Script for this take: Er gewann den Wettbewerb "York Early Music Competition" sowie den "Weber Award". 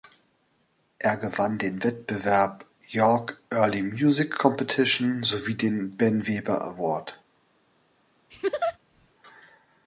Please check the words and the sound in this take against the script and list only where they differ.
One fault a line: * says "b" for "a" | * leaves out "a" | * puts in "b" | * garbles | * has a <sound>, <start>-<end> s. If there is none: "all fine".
* puts in "Ben"
* has a laugh, 8.3-8.8 s